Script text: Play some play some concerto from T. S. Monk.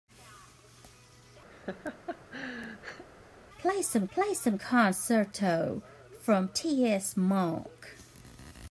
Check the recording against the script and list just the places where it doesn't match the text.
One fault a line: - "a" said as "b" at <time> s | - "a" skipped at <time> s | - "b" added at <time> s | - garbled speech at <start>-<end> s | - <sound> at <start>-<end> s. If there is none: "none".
- laugh at 1.5-3.0 s